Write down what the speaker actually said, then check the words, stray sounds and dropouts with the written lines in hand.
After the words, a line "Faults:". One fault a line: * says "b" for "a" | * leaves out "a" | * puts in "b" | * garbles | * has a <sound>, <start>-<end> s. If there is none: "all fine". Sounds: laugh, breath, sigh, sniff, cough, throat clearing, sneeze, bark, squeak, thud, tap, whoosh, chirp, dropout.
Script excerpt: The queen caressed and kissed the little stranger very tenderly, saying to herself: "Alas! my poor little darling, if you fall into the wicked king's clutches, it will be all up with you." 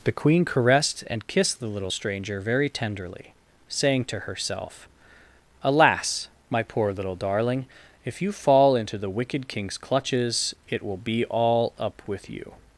The queen caressed and kissed the little stranger very tenderly, saying to herself: "Alas! my poor little darling, if you fall into the wicked king's clutches, it will be all up with you."
Faults:
all fine